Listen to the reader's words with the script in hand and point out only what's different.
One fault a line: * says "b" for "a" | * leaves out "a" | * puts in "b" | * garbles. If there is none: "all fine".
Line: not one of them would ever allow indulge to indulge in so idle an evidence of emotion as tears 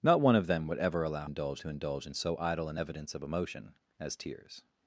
all fine